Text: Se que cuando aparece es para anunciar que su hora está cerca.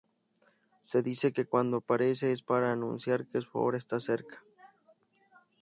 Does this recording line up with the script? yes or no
no